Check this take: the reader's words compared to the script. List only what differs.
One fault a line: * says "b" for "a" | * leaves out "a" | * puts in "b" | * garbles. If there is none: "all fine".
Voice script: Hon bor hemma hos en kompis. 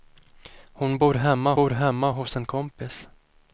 * puts in "bor hemma"